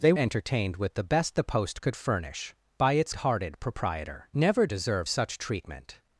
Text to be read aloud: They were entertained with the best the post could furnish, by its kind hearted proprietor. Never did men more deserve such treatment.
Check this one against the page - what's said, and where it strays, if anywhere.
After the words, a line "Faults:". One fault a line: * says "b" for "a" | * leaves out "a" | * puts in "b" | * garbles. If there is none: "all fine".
They entertained with the best the post could furnish, by its hearted proprietor. Never deserve such treatment.
Faults:
* leaves out "were"
* leaves out "kind"
* leaves out "did men more"